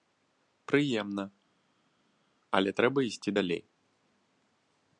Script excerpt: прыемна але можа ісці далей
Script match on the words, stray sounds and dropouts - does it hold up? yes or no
no